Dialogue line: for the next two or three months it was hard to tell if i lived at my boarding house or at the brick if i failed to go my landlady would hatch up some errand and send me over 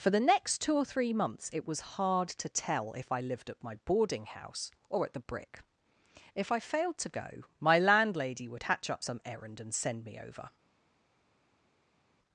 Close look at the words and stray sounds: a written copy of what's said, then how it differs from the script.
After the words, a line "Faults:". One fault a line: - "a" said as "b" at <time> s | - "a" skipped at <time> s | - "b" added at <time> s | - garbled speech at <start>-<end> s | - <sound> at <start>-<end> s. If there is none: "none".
for the next two or three months it was hard to tell if i lived at my boarding house or at the brick if i failed to go my landlady would hatch up some errand and send me over
Faults:
none